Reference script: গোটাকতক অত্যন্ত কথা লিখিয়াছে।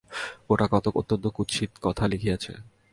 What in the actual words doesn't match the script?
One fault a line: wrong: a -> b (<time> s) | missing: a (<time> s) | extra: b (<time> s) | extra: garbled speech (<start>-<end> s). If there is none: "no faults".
extra: কুৎসিত (1.3 s)